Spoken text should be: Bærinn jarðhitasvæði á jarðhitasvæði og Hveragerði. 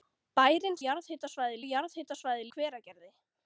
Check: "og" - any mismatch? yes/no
no